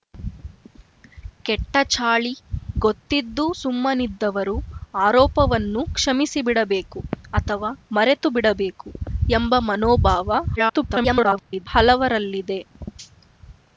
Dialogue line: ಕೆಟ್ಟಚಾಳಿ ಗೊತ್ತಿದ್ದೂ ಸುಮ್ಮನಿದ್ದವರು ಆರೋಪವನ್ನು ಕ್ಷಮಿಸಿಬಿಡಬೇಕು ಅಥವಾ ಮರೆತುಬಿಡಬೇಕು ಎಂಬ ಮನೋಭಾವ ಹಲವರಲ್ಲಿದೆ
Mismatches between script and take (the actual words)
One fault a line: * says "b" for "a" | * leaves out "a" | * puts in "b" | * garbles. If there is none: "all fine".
* garbles